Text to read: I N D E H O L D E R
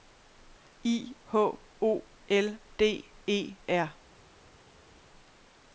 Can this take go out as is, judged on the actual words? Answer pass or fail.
fail